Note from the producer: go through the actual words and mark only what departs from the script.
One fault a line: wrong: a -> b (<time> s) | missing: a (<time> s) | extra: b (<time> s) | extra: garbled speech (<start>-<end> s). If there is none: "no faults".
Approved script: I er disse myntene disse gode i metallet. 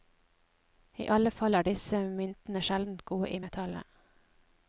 extra: alle fall (1.1 s)
wrong: disse -> sjeldent (2.7 s)